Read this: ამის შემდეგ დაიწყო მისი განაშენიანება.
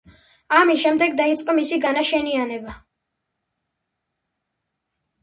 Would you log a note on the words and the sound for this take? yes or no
no